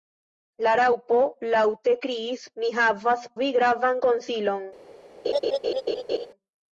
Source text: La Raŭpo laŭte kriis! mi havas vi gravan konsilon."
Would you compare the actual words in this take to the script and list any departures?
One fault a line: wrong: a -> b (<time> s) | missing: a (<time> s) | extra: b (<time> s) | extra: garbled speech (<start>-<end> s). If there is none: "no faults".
no faults